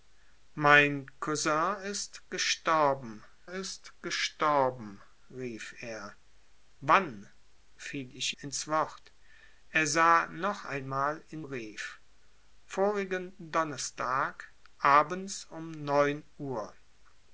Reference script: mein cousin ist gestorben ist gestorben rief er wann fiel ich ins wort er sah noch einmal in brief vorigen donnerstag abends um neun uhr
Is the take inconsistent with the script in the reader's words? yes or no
no